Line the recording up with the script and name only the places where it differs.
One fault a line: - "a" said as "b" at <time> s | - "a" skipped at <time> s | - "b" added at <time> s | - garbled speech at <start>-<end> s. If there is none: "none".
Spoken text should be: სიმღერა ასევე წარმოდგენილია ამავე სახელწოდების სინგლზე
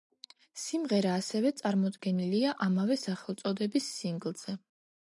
none